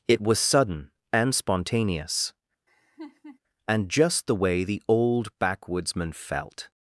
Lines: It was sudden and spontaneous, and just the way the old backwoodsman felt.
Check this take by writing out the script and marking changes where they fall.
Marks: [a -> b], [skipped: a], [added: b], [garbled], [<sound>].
It was sudden and spontaneous, [laugh] and just the way the old backwoodsman felt.